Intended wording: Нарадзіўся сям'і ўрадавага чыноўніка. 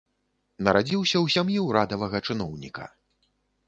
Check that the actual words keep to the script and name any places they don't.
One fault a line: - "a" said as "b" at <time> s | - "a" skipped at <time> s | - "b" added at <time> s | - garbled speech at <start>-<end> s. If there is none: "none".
- "ў" added at 1.2 s